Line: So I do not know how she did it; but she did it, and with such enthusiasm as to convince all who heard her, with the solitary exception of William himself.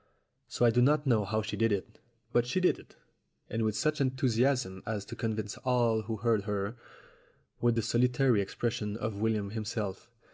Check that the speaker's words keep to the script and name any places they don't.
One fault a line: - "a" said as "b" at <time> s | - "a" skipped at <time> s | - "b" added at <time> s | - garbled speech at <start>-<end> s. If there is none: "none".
none